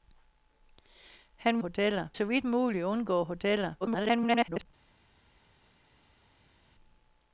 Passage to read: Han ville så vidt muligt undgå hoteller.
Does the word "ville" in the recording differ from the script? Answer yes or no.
yes